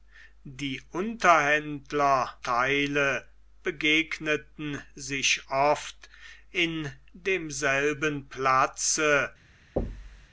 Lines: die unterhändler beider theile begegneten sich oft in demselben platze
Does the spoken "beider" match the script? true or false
false